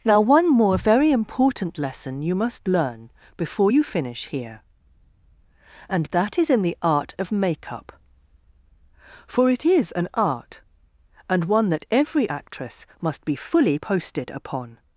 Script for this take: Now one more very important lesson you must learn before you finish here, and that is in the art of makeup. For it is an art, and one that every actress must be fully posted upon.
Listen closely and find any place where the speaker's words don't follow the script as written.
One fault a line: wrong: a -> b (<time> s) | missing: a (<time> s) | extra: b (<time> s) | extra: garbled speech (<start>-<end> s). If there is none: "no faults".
no faults